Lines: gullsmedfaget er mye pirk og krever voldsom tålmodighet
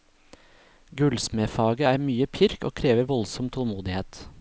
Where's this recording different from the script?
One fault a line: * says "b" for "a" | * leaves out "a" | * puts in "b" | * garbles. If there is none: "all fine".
all fine